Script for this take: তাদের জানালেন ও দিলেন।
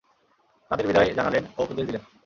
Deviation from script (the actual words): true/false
true